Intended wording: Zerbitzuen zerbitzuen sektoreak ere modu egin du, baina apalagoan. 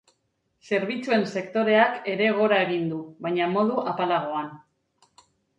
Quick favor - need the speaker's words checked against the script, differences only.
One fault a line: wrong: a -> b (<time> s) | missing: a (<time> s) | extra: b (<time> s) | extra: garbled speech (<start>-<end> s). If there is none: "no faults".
missing: zerbitzuen (1.2 s)
wrong: modu -> gora (2.4 s)
extra: modu (3.6 s)